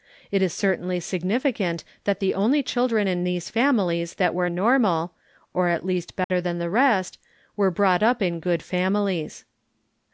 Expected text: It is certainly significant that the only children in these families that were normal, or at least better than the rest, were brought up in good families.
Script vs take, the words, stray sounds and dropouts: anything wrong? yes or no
yes